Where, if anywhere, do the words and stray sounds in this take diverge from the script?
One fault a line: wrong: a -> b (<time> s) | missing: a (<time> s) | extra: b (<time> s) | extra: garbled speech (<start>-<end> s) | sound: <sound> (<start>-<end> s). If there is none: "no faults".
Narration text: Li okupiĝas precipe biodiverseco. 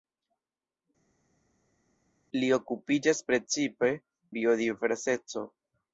no faults